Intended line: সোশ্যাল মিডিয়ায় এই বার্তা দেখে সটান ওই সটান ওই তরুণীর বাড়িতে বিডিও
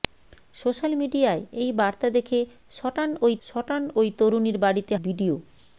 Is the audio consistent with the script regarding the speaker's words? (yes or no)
yes